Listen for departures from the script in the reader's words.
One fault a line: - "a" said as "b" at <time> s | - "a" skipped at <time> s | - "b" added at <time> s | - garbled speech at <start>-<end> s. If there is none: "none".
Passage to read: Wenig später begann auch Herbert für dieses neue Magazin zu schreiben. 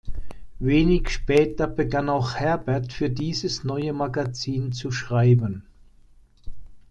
none